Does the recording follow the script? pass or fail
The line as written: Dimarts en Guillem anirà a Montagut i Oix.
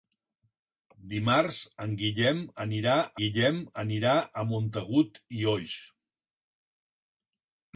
fail